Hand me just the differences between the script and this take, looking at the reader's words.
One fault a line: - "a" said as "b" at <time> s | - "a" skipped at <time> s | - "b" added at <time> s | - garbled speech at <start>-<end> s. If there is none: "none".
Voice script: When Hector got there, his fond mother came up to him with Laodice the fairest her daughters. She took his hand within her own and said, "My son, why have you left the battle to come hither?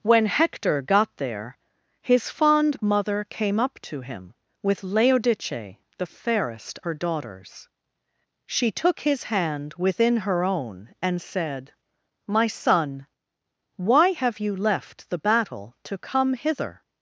none